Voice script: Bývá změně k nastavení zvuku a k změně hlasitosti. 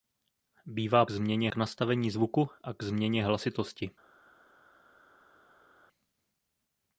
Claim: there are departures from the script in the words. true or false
false